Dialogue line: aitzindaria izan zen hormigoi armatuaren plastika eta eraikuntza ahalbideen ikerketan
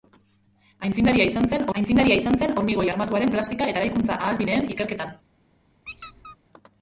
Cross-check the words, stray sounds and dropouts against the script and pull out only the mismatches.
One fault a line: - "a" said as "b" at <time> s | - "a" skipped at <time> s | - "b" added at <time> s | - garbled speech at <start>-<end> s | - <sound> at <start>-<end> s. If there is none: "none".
- "aitzindaria izan zen" added at 1.8 s
- squeak at 5.9-6.4 s